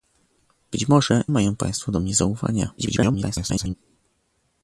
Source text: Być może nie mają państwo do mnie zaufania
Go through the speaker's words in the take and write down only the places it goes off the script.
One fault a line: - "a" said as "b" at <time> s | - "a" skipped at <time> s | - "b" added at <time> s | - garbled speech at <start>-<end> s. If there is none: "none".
- "nie" skipped at 1.2 s
- garbled speech at 2.8-3.7 s